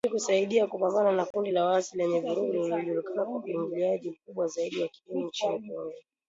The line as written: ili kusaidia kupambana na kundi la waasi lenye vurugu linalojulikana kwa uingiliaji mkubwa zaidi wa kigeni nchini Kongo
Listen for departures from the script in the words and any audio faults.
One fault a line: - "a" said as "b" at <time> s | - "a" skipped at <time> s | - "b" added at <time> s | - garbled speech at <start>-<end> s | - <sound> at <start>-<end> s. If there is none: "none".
- dropout at 1.3-1.3 s